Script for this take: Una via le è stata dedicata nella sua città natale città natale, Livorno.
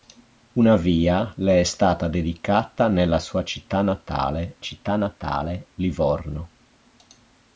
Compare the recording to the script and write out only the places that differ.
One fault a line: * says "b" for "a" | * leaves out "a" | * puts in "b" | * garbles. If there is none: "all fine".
all fine